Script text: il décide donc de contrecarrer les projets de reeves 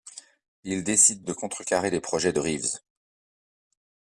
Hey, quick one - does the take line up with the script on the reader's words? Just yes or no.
no